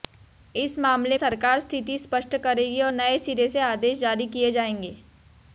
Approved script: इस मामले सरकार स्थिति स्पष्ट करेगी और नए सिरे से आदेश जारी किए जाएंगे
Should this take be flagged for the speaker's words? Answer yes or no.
no